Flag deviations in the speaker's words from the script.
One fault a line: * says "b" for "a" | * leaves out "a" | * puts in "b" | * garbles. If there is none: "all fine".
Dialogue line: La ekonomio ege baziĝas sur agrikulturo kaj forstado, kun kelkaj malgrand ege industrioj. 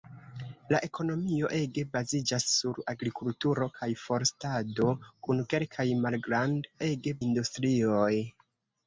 all fine